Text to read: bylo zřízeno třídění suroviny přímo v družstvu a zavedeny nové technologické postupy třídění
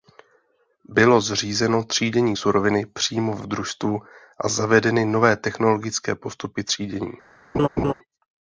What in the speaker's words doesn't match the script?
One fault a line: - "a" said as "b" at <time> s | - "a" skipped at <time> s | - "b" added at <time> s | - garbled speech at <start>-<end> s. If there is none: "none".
- "v" added at 3.4 s